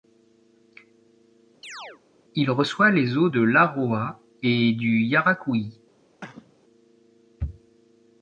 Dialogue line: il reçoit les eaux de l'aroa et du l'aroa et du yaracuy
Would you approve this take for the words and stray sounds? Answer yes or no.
no